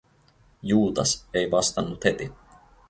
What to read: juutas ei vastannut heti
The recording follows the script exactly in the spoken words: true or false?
true